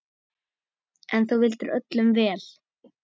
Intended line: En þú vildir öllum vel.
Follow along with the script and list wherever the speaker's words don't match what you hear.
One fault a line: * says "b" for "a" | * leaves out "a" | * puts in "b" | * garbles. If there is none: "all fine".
all fine